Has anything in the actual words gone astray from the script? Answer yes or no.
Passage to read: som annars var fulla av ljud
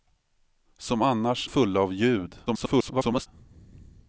yes